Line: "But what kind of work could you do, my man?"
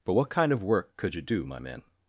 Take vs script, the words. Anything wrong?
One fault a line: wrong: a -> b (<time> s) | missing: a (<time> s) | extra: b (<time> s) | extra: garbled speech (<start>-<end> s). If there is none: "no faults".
no faults